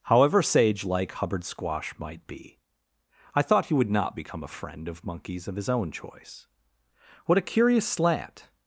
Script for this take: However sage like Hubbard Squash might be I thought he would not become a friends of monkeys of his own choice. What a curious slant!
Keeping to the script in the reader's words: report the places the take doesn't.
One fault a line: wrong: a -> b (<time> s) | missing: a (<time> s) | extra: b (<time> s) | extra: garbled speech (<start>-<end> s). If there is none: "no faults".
wrong: friends -> friend (4.5 s)